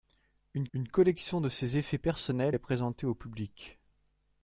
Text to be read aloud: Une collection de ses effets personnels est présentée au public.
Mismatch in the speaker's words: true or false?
true